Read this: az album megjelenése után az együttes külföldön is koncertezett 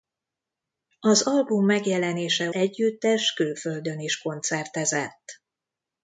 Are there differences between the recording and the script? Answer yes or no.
yes